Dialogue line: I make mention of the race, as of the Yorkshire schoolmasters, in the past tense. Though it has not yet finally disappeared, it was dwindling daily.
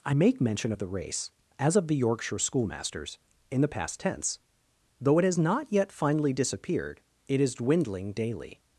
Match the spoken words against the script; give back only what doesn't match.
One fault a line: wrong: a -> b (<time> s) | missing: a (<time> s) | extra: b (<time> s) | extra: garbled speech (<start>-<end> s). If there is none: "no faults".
wrong: was -> is (7.4 s)